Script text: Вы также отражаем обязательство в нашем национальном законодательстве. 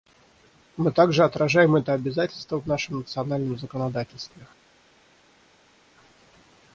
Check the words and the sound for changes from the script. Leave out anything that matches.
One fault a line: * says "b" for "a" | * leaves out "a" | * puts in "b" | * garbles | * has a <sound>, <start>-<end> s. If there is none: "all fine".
* says "Мы" for "Вы"
* puts in "это"